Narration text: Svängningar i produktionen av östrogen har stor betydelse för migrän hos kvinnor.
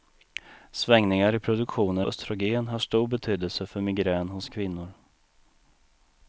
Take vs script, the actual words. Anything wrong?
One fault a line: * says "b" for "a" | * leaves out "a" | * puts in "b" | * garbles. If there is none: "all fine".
* leaves out "av"